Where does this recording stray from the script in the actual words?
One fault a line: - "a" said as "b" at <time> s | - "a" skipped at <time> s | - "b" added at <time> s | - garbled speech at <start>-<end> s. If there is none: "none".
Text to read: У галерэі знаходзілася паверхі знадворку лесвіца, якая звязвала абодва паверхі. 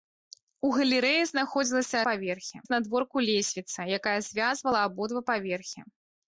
none